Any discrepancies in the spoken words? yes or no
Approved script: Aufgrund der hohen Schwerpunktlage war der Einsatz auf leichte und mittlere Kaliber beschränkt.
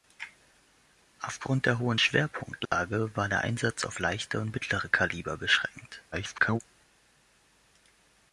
yes